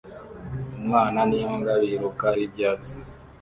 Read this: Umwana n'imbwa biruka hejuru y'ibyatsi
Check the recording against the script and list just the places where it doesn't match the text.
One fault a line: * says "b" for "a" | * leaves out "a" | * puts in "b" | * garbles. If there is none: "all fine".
* leaves out "hejuru"